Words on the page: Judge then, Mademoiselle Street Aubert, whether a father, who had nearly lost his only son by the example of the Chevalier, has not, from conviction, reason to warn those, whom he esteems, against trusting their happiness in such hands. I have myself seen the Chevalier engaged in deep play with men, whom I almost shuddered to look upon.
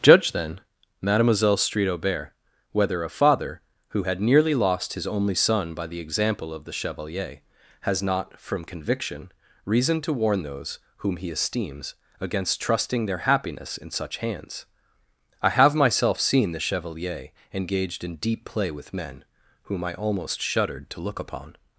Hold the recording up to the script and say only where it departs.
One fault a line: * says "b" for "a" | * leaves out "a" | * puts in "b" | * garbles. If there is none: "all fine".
all fine